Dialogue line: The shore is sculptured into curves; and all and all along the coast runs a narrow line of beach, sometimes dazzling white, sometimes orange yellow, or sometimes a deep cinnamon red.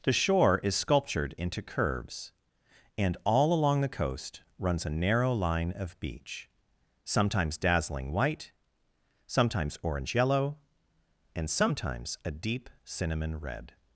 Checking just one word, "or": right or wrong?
wrong